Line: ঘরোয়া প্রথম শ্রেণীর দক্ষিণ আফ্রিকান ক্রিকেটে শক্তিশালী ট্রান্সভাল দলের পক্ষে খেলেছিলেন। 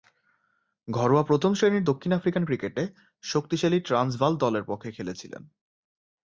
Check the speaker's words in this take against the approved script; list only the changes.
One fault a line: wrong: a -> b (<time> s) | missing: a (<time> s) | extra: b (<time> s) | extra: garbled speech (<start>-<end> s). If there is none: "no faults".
no faults